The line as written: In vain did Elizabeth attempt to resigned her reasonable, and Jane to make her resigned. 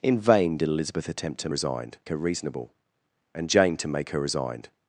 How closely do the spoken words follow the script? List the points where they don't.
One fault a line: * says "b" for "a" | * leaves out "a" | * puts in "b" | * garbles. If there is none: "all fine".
all fine